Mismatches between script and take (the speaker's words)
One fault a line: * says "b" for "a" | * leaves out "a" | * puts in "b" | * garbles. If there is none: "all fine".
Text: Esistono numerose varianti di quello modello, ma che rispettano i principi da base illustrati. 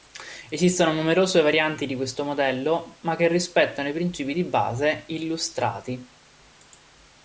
* says "questo" for "quello"
* says "di" for "da"